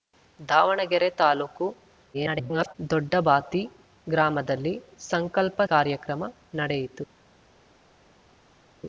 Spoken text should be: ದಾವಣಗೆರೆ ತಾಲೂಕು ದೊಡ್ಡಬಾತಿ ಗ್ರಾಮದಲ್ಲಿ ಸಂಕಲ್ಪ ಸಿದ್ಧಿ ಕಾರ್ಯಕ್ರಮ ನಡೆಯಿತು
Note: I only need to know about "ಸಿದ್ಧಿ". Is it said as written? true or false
false